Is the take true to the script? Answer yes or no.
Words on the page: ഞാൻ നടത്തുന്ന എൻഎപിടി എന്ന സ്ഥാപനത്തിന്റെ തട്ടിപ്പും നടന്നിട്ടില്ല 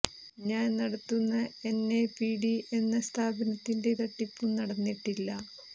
yes